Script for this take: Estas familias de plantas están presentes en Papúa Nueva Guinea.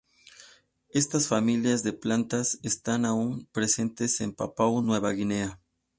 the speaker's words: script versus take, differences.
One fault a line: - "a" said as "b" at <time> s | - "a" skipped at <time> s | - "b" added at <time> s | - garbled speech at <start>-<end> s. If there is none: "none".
- "aún" added at 3.0 s